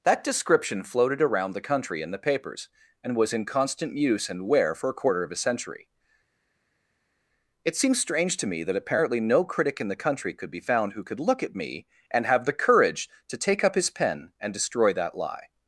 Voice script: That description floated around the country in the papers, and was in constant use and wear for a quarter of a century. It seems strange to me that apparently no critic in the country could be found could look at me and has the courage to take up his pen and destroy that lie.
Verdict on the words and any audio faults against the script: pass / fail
fail